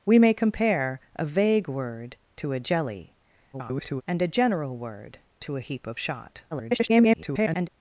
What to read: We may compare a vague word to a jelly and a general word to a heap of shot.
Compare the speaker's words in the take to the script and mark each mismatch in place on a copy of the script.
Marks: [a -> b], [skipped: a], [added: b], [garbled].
We may compare a vague word to a jelly [garbled] and a general word to a heap of shot. [garbled]